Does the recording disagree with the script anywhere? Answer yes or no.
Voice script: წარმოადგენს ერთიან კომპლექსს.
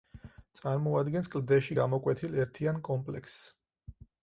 yes